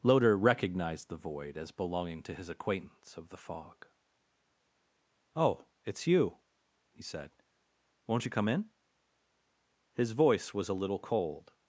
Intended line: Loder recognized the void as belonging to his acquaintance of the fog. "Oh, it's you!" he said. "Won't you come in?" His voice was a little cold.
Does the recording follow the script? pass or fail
pass